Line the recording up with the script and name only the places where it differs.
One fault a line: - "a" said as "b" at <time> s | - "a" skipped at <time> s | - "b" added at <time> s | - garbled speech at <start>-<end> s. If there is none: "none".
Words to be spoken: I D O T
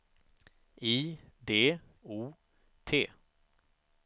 none